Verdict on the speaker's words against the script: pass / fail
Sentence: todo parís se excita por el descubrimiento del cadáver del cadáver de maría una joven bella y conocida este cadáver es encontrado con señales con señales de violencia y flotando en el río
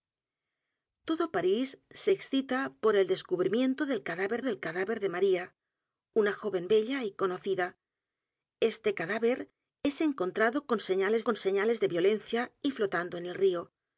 pass